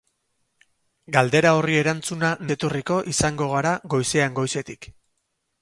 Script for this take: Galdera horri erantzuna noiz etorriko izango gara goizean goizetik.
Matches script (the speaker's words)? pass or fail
fail